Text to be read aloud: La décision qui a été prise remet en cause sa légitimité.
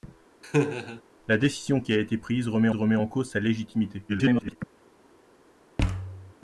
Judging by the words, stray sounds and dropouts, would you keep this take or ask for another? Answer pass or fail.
fail